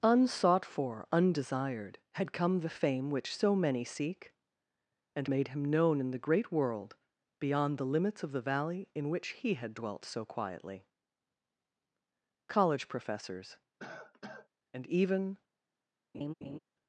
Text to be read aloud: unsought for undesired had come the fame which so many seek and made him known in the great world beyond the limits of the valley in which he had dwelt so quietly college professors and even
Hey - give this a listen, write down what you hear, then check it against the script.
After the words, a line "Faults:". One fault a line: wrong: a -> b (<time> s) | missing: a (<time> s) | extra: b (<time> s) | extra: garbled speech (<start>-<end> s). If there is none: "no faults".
unsought for undesired had come the fame which so many seek and made him known in the great world beyond the limits of the valley in which he had dwelt so quietly college professors and even
Faults:
no faults